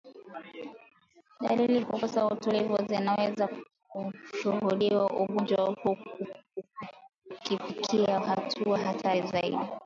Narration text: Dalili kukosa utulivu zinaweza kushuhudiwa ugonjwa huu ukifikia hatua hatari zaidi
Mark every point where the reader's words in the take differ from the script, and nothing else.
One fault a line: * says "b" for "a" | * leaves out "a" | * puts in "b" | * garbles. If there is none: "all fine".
all fine